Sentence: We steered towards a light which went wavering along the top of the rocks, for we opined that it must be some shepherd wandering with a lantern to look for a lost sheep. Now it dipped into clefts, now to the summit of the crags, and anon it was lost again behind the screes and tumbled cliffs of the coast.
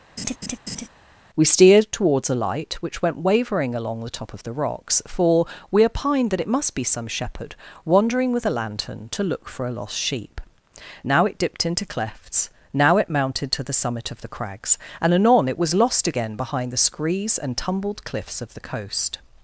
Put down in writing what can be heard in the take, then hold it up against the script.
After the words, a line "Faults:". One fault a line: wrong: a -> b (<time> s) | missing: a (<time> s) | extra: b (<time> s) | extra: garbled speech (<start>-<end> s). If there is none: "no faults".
We steered towards a light which went wavering along the top of the rocks, for we opined that it must be some shepherd wandering with a lantern to look for a lost sheep. Now it dipped into clefts, now it mounted to the summit of the crags, and anon it was lost again behind the screes and tumbled cliffs of the coast.
Faults:
extra: it mounted (13.0 s)